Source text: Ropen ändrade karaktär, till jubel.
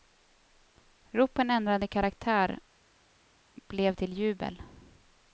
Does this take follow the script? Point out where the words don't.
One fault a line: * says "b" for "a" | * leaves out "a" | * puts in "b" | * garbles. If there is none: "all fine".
* puts in "blev"